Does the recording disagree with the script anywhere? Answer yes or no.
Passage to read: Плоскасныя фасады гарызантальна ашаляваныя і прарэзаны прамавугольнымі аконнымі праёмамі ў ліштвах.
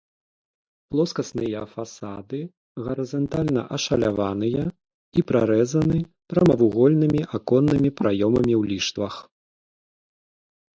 no